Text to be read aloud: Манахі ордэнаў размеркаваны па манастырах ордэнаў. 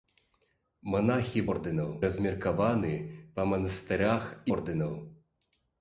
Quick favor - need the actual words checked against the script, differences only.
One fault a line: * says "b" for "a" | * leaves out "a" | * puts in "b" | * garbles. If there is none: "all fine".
all fine